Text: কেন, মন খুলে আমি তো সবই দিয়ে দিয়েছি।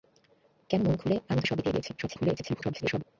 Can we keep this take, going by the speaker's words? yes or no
no